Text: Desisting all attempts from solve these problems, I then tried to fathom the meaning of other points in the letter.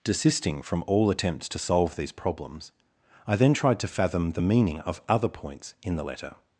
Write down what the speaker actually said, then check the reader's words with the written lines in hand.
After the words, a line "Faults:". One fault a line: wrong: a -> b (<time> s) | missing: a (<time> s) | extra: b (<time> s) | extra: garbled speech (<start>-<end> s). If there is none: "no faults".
Desisting from all attempts to solve these problems, I then tried to fathom the meaning of other points in the letter.
Faults:
extra: from (0.6 s)
wrong: from -> to (1.5 s)